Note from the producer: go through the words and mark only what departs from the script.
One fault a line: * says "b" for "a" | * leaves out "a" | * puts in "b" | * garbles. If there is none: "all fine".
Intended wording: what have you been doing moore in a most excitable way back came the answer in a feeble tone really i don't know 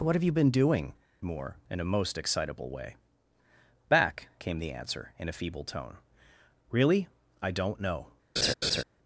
all fine